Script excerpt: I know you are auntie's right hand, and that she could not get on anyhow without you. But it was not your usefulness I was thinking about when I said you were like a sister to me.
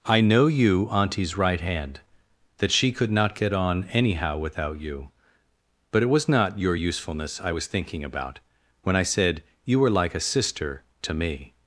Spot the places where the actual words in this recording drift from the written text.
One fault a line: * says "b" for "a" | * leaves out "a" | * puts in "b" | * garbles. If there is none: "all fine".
* leaves out "are"
* leaves out "and"